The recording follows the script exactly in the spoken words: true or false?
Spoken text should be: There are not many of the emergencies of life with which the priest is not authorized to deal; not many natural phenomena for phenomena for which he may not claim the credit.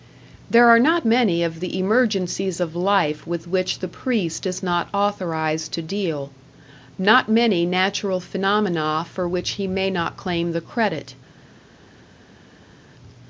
false